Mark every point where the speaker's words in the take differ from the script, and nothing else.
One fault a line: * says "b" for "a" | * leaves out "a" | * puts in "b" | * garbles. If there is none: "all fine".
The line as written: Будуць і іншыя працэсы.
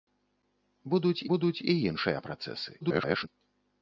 * puts in "будуць"
* garbles